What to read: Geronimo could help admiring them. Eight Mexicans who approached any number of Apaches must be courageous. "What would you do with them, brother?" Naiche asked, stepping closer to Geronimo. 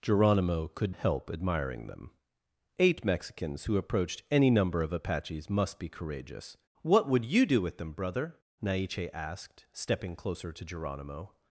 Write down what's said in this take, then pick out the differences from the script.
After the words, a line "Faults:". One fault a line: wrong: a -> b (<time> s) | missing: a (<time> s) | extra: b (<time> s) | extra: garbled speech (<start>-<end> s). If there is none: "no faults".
Geronimo could help admiring them. Eight Mexicans who approached any number of Apaches must be courageous. "What would you do with them, brother?" Naiche asked, stepping closer to Geronimo.
Faults:
no faults